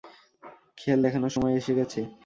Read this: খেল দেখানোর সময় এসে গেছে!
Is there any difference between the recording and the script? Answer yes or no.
no